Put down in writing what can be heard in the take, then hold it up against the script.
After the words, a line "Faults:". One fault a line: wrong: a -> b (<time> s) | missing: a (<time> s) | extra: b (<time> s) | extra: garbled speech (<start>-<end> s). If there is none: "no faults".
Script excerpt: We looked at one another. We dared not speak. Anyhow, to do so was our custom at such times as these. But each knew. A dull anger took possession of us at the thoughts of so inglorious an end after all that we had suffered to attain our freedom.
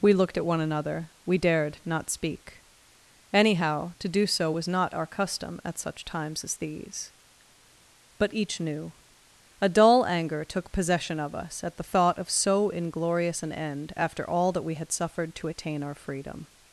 We looked at one another. We dared not speak. Anyhow, to do so was not our custom at such times as these. But each knew. A dull anger took possession of us at the thought of so inglorious an end after all that we had suffered to attain our freedom.
Faults:
extra: not (4.7 s)
wrong: thoughts -> thought (11.8 s)